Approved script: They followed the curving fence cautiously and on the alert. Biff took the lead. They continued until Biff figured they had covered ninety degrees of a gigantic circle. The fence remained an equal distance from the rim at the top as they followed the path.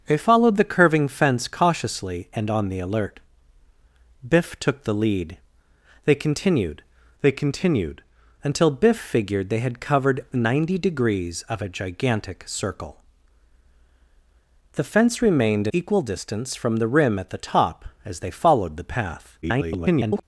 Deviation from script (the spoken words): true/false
true